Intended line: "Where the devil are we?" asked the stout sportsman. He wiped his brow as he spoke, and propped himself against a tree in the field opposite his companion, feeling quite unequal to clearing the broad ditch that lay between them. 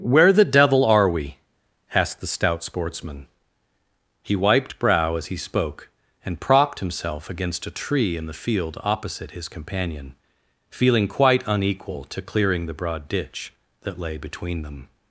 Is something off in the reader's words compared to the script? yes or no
yes